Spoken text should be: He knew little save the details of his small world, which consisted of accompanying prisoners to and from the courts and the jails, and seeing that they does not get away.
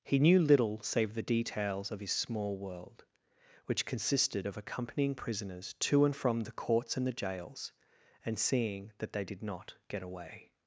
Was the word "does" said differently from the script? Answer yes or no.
yes